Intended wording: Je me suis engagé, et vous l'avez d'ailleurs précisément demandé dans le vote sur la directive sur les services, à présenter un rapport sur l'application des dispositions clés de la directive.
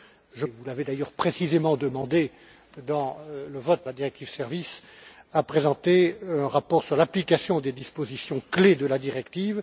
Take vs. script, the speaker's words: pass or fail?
fail